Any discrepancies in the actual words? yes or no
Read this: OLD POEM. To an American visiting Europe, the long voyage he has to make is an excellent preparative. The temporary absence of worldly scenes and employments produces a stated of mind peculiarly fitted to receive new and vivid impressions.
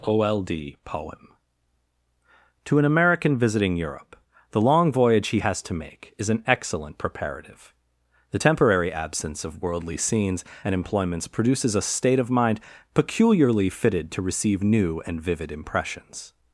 yes